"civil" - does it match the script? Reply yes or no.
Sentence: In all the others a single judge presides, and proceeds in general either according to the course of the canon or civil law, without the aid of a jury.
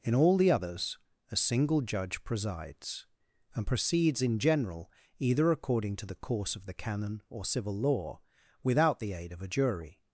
yes